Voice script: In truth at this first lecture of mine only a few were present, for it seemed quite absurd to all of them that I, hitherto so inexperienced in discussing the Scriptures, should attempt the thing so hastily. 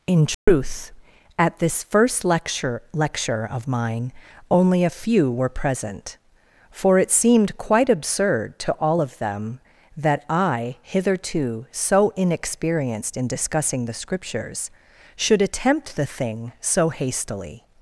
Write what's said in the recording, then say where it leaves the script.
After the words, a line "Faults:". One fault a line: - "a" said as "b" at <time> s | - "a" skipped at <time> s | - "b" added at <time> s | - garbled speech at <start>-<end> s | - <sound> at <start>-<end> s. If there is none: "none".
In truth at this first lecture lecture of mine only a few were present, for it seemed quite absurd to all of them that I, hitherto so inexperienced in discussing the Scriptures, should attempt the thing so hastily.
Faults:
- dropout at 0.3-0.5 s
- "lecture" added at 2.9 s